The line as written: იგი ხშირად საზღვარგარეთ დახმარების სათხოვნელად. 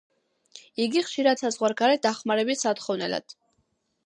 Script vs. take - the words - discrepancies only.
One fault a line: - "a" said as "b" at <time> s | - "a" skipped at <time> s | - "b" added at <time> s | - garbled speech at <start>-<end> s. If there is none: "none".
none